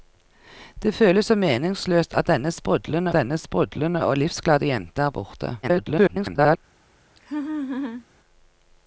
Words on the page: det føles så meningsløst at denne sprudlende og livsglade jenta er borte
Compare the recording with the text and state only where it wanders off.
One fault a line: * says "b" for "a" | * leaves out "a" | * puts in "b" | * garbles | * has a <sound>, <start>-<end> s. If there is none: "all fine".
* puts in "denne sprudlende"
* garbles
* has a laugh, 7.2-8.1 s